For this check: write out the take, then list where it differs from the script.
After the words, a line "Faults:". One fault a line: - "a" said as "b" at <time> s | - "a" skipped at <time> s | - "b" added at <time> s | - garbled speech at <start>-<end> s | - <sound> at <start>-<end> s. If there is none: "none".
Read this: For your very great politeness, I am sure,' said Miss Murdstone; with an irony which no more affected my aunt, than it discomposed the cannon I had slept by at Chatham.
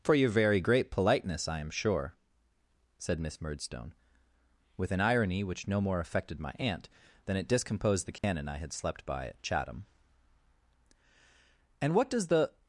For your very great politeness, I am sure,' said Miss Murdstone; with an irony which no more affected my aunt, than it discomposed the cannon I had slept by at Chatham. 'And what does the
Faults:
- dropout at 8.2-8.2 s
- "And what does the" added at 11.8 s